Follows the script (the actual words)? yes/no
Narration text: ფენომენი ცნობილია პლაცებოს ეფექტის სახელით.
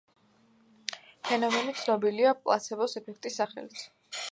yes